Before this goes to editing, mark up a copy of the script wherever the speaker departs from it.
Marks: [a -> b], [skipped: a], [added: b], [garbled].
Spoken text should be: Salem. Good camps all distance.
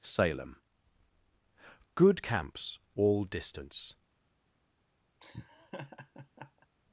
Salem. Good camps all distance.